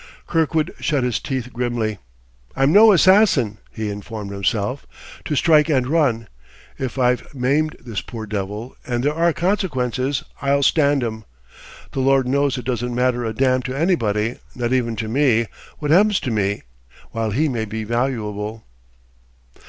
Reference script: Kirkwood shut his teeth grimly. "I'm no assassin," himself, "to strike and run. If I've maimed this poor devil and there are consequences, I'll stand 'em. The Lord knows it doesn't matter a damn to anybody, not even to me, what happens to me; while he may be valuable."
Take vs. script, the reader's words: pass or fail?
fail